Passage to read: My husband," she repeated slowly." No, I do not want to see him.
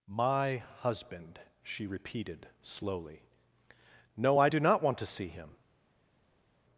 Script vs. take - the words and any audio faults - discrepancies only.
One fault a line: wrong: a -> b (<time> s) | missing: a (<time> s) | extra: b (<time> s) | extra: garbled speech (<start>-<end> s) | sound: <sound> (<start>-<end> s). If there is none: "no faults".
no faults